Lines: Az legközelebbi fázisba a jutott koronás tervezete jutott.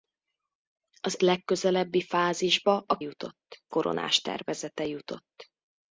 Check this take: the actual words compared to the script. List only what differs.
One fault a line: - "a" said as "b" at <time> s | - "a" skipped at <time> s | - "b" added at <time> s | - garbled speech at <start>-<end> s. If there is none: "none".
none